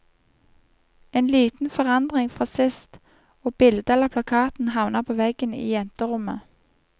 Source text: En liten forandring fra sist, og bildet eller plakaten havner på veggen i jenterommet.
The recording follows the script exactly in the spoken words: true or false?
true